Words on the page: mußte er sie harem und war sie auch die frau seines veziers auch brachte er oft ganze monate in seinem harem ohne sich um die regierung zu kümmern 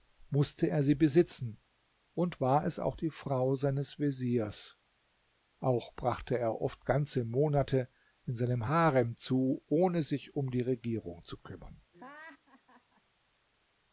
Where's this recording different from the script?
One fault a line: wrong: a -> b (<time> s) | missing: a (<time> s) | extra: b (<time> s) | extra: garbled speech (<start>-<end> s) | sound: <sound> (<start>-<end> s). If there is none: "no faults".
wrong: harem -> besitzen (0.9 s)
wrong: sie -> es (2.6 s)
extra: zu (9.2 s)
sound: laugh (11.9-13.0 s)